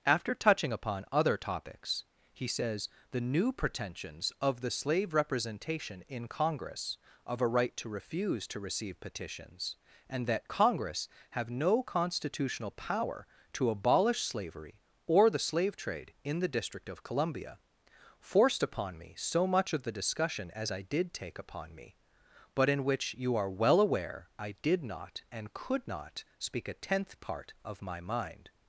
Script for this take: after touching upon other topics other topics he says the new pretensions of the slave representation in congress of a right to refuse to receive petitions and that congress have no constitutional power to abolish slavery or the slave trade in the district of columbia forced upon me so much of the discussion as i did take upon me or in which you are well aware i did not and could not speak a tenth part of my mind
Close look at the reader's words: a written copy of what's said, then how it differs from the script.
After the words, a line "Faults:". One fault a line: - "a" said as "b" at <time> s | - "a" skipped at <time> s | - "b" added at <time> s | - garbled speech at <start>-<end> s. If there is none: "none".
after touching upon other topics he says the new pretensions of the slave representation in congress of a right to refuse to receive petitions and that congress have no constitutional power to abolish slavery or the slave trade in the district of columbia forced upon me so much of the discussion as i did take upon me but in which you are well aware i did not and could not speak a tenth part of my mind
Faults:
- "other topics" skipped at 2.0 s
- "or" said as "but" at 22.6 s